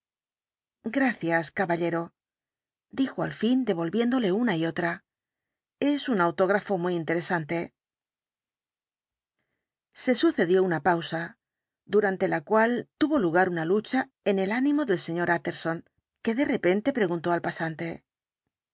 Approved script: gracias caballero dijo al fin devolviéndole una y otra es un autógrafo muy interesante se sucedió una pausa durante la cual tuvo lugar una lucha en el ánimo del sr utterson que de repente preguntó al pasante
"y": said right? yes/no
yes